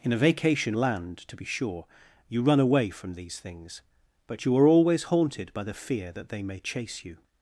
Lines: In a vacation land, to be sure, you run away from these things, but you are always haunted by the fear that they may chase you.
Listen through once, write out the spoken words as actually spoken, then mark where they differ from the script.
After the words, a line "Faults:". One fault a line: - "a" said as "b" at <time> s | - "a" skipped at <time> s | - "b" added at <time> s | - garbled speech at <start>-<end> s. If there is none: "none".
In a vacation land, to be sure, you run away from these things, but you are always haunted by the fear that they may chase you.
Faults:
none